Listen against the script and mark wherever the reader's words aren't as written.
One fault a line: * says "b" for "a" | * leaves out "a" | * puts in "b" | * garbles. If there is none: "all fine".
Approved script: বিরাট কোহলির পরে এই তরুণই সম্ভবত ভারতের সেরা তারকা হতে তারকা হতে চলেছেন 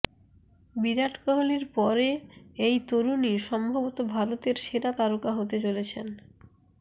* leaves out "তারকা হতে"